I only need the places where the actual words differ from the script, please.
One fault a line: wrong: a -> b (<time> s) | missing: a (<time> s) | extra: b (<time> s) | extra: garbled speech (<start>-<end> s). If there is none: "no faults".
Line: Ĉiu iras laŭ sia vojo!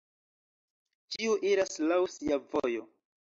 no faults